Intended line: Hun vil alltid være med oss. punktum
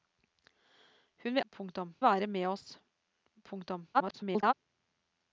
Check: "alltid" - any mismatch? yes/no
yes